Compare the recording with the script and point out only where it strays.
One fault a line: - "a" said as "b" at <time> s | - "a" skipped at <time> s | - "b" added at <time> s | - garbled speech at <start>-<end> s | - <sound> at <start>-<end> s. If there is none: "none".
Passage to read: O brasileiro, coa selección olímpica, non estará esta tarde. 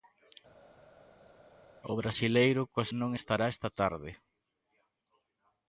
- "selección olímpica" skipped at 2.9 s